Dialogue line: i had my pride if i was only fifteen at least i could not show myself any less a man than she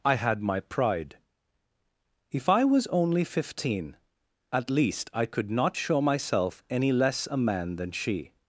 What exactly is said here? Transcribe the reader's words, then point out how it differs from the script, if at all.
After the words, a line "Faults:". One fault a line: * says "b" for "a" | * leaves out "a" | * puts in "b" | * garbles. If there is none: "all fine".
i had my pride if i was only fifteen at least i could not show myself any less a man than she
Faults:
all fine